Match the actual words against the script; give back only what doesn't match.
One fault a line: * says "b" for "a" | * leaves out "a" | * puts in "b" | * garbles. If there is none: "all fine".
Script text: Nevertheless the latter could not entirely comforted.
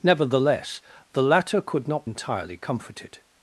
all fine